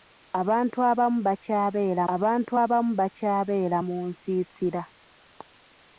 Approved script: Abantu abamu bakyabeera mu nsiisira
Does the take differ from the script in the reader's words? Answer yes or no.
yes